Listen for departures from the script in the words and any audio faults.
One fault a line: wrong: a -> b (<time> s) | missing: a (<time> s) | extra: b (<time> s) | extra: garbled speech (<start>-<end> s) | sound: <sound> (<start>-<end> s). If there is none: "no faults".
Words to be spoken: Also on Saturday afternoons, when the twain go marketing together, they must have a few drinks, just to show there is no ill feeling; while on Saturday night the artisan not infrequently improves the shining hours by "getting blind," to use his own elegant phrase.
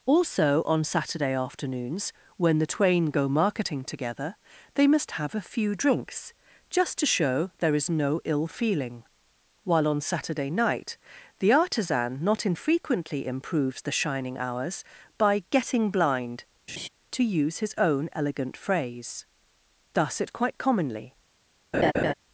sound: laugh (16.7-16.9 s)
extra: Thus it quite commonly (19.9 s)
sound: laugh (21.7-22.1 s)